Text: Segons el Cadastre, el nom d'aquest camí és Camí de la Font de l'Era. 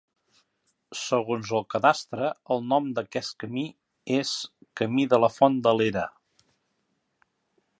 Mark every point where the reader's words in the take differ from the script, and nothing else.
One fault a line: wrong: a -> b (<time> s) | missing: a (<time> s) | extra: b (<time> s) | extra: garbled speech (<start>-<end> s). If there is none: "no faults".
no faults